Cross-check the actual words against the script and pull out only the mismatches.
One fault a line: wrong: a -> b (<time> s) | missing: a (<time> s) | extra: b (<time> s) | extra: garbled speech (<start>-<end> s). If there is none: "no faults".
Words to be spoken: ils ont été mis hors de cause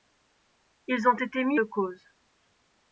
missing: hors (1.6 s)